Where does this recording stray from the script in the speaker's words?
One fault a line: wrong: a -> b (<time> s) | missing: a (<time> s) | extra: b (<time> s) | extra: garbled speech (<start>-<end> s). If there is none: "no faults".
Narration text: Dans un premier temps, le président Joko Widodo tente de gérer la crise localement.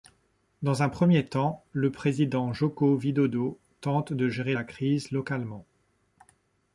no faults